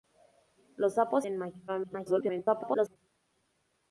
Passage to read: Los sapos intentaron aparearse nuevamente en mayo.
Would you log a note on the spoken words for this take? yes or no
yes